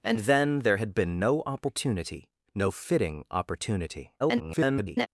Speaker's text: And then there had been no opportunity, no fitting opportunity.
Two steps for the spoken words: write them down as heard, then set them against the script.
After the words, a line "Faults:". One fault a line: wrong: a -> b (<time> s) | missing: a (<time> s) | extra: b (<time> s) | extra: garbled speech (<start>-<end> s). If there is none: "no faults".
And then there had been no opportunity, no fitting opportunity. [garbled]
Faults:
extra: garbled speech (4.2-5.1 s)